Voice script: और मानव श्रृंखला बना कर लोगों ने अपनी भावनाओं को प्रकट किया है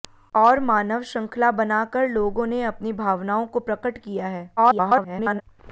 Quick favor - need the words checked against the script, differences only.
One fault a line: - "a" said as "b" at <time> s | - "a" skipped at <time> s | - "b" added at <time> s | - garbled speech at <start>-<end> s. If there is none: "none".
- garbled speech at 4.6-5.4 s